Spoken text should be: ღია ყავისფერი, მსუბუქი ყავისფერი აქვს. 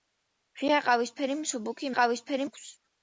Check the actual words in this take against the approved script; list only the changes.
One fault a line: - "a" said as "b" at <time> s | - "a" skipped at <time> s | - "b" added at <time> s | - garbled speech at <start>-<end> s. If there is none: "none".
none